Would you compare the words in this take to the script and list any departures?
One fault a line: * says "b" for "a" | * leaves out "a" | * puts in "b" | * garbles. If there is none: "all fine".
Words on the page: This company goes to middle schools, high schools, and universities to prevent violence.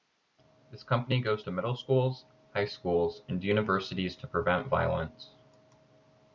all fine